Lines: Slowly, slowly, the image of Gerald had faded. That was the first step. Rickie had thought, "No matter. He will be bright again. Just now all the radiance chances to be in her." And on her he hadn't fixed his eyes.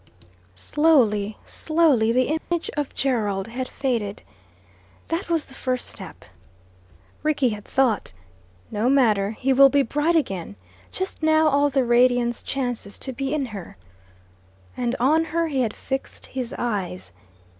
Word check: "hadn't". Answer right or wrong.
wrong